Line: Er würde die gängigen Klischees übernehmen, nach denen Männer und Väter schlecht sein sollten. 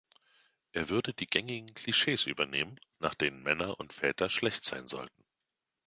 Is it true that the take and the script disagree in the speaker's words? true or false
false